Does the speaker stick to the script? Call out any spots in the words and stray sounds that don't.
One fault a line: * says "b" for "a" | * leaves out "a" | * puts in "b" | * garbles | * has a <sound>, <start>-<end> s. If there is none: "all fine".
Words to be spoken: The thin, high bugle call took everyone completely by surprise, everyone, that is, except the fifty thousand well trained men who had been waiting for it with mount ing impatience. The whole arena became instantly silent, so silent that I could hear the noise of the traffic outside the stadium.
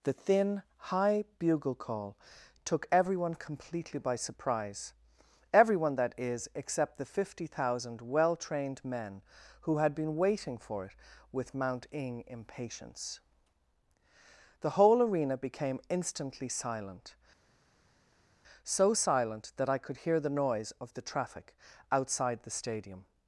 all fine